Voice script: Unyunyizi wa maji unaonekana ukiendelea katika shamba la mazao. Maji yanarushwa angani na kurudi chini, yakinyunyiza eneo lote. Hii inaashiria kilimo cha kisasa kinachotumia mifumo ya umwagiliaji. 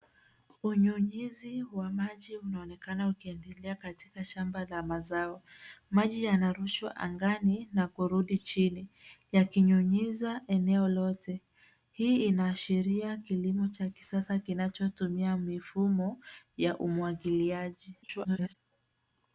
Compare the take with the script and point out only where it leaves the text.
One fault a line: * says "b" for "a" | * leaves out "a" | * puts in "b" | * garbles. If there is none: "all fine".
* garbles